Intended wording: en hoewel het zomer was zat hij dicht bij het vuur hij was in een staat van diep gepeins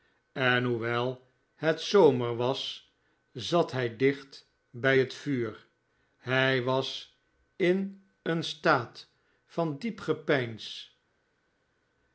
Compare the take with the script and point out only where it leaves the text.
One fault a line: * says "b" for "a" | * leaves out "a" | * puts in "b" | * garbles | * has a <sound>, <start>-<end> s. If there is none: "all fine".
all fine